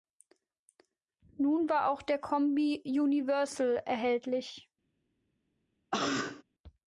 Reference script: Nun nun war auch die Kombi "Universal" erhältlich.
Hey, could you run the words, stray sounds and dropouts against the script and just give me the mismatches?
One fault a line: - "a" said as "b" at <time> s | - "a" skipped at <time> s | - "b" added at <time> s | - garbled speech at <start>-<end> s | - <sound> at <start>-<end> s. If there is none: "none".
- "nun" skipped at 1.7 s
- "die" said as "der" at 2.0 s
- cough at 5.9-6.4 s